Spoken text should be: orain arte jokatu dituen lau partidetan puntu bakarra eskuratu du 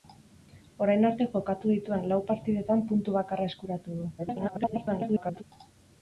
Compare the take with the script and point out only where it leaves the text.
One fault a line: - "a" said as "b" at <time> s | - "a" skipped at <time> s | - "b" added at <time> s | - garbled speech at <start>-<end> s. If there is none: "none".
- garbled speech at 4.2-5.4 s